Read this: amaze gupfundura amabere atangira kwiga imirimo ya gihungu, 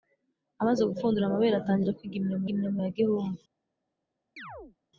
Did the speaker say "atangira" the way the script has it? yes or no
yes